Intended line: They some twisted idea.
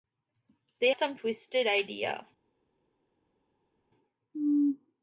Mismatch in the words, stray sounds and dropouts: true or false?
false